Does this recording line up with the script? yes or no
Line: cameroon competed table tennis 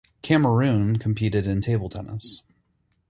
no